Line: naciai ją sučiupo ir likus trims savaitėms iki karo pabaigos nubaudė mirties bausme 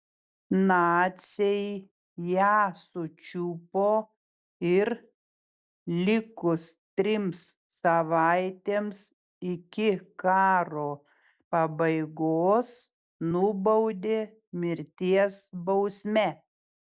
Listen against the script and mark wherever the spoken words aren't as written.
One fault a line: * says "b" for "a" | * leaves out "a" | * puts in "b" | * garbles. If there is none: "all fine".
all fine